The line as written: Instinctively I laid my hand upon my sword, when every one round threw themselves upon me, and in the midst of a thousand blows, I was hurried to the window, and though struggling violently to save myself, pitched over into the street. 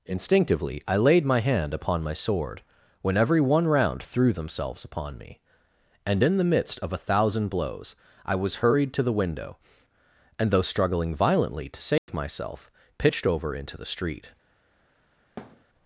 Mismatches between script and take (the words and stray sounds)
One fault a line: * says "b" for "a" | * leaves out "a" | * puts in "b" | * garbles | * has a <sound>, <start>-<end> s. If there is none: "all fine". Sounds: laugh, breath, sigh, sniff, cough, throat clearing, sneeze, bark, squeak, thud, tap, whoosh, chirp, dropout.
* has a dropout, 12.0-12.1 s
* has a thud, 15.4-15.6 s